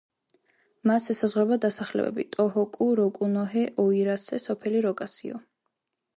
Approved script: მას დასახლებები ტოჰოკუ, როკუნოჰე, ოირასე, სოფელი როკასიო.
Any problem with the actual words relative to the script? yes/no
yes